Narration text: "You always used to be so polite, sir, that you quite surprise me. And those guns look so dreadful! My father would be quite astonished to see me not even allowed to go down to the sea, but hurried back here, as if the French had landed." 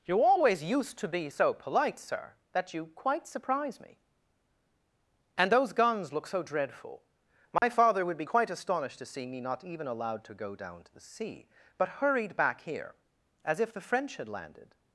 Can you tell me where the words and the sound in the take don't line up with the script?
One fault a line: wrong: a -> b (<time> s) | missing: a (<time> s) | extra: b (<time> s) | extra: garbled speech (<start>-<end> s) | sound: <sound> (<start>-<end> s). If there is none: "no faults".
sound: dropout (7.6-7.6 s)